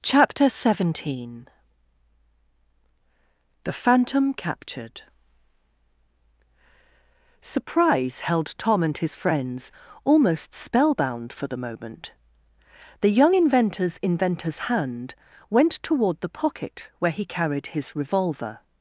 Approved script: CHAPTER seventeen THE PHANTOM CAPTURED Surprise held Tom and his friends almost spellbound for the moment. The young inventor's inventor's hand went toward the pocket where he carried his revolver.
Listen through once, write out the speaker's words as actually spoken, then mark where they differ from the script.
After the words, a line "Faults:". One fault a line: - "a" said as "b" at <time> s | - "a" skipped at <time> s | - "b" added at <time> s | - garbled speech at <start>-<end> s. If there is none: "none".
CHAPTER seventeen THE PHANTOM CAPTURED Surprise held Tom and his friends almost spellbound for the moment. The young inventor's inventor's hand went toward the pocket where he carried his revolver.
Faults:
none